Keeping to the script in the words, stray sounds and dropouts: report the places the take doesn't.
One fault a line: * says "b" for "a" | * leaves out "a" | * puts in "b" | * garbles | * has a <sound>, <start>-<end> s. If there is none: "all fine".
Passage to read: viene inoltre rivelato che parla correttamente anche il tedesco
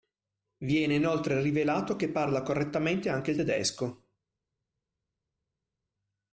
all fine